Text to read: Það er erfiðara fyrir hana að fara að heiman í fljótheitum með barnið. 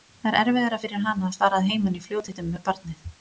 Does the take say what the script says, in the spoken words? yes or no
yes